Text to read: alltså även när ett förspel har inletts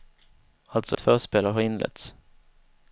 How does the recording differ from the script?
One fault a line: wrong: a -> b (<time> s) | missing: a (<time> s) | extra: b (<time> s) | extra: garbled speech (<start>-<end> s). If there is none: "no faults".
missing: även när (1.0 s)